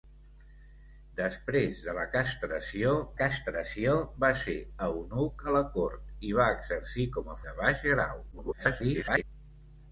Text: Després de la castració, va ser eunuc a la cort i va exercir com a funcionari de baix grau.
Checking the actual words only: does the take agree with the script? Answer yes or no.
no